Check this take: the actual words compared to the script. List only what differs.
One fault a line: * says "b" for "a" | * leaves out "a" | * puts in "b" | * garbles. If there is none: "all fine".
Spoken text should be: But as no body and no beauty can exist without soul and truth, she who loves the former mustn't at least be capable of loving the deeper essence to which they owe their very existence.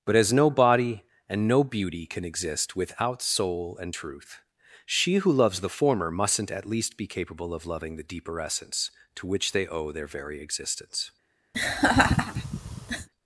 all fine